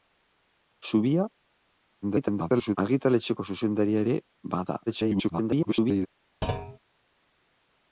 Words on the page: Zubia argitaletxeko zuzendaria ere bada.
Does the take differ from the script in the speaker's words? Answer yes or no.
yes